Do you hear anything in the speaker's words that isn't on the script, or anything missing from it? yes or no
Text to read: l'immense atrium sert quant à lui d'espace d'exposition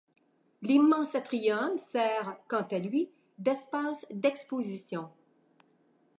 no